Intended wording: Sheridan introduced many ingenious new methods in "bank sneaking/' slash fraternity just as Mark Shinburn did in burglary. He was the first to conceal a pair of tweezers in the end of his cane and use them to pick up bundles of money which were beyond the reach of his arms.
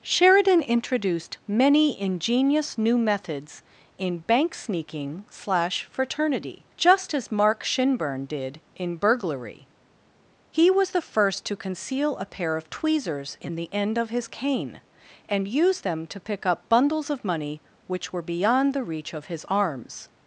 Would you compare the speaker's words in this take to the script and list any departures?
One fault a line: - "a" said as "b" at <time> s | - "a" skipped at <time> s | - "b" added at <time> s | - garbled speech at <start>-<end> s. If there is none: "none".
none